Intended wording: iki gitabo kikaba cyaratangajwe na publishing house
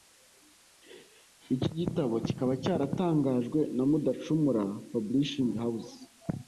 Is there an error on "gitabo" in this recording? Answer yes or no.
no